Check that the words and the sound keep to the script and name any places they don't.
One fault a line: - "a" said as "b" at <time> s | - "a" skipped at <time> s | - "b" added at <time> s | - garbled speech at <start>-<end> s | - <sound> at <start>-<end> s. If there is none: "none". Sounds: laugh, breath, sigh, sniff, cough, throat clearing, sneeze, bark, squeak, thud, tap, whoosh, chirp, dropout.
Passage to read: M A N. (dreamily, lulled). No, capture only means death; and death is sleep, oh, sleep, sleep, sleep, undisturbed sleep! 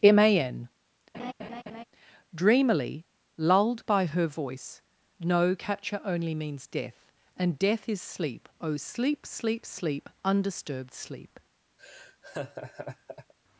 - laugh at 1.1-1.8 s
- "by her voice" added at 3.9 s
- laugh at 11.8-13.3 s